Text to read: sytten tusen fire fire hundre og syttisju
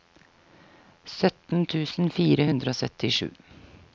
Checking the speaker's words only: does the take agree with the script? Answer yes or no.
no